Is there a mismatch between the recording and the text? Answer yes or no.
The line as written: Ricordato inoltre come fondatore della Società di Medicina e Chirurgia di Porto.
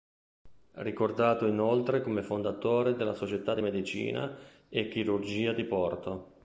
no